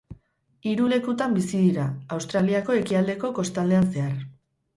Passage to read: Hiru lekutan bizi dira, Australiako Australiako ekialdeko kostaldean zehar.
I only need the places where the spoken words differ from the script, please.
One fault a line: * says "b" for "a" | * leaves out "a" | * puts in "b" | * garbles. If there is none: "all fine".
* leaves out "Australiako"